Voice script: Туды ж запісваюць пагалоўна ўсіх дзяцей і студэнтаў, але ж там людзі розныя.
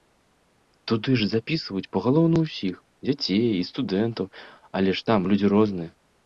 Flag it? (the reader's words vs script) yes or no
no